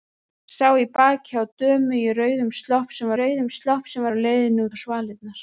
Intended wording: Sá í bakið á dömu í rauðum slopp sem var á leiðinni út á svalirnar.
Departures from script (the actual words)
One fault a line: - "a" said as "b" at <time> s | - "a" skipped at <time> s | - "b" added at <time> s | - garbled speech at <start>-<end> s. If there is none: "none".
- "rauðum slopp sem" added at 3.2 s
- "út" skipped at 4.7 s